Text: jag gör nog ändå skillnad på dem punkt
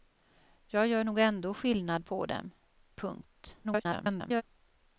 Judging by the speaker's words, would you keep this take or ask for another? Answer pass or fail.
fail